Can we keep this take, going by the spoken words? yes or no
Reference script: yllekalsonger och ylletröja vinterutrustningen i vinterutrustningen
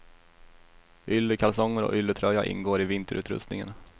no